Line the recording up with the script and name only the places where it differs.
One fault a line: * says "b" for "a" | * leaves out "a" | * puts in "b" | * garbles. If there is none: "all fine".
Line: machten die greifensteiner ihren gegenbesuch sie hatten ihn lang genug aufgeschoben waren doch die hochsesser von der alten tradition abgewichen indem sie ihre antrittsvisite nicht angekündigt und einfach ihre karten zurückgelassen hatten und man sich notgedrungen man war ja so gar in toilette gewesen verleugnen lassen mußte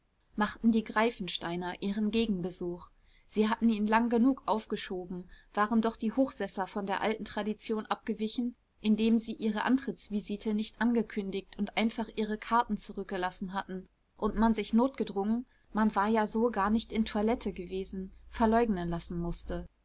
* puts in "nicht"